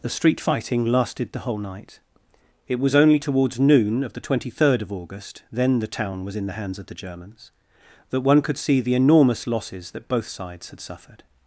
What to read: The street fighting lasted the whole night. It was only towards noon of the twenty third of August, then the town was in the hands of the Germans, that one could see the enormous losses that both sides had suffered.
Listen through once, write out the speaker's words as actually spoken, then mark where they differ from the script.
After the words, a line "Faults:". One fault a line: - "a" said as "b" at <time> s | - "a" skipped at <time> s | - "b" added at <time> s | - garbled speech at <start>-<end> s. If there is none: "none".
The street fighting lasted the whole night. It was only towards noon of the twenty third of August, then the town was in the hands of the Germans, that one could see the enormous losses that both sides had suffered.
Faults:
none